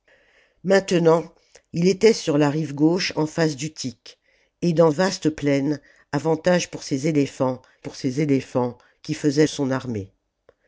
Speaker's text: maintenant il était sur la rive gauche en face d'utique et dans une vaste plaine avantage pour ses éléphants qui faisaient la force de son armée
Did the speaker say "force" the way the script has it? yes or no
no